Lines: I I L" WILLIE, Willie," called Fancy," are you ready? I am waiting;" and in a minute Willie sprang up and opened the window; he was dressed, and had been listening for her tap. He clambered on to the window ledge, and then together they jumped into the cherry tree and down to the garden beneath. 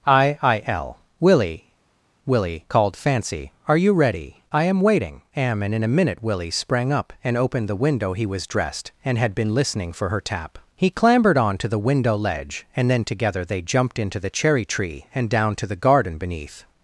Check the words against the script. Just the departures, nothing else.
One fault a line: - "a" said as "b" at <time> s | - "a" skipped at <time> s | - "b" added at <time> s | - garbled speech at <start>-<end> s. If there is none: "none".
- "am" added at 5.3 s